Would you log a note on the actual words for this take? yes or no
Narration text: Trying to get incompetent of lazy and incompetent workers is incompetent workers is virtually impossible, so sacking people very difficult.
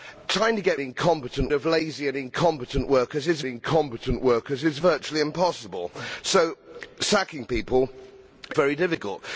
no